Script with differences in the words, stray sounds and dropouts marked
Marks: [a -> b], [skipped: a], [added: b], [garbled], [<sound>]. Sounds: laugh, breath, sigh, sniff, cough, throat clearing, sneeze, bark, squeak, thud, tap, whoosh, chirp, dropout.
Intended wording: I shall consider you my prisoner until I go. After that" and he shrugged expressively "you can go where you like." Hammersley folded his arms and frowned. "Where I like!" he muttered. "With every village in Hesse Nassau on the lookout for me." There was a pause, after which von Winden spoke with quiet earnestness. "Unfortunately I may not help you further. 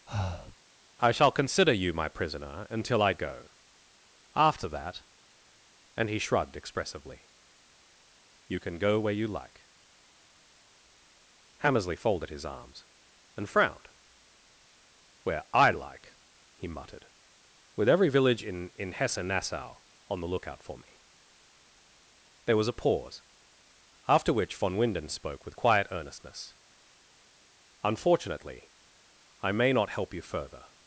[breath] I shall consider you my prisoner until I go. After that" and he shrugged expressively "you can go where you like." Hammersley folded his arms and frowned. "Where I like!" he muttered. "With every village in [added: in] Hesse Nassau on the lookout for me." There was a pause, after which von Winden spoke with quiet earnestness. "Unfortunately I may not help you further.